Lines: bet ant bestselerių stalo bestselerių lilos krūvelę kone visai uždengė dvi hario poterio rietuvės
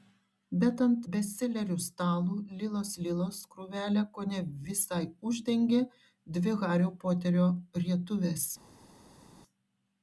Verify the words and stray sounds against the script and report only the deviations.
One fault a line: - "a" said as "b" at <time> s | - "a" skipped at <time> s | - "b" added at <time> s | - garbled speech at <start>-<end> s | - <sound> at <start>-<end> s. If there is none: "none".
- "bestselerių" said as "lilos" at 2.6 s